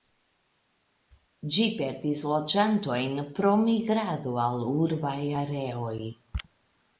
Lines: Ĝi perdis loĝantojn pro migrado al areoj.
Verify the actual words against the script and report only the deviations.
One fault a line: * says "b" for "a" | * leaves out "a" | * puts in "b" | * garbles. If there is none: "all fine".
* puts in "urbaj"